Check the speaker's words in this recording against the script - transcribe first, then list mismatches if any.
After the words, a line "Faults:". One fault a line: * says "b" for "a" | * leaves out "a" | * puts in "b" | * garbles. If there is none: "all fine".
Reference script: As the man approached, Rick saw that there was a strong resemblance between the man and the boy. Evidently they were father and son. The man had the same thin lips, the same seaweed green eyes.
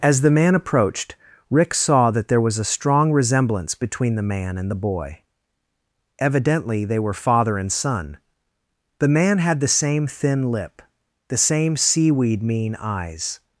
As the man approached, Rick saw that there was a strong resemblance between the man and the boy. Evidently they were father and son. The man had the same thin lip, the same seaweed mean eyes.
Faults:
* says "lip" for "lips"
* says "mean" for "green"